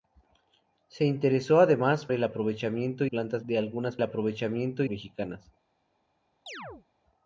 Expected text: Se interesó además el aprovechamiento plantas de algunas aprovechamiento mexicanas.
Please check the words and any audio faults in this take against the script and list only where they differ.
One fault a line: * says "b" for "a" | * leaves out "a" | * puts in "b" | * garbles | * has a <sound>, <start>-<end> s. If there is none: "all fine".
* has a chirp, 6.5-6.9 s